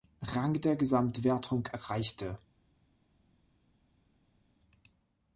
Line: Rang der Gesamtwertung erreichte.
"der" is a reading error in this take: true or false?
false